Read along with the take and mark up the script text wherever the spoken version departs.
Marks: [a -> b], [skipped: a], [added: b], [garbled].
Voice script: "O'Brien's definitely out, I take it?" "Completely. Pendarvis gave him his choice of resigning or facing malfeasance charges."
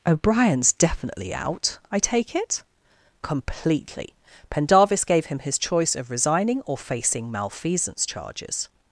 "O'Brien's definitely out, I take it?" "Completely. Pendarvis gave him his choice of resigning or facing malfeasance charges."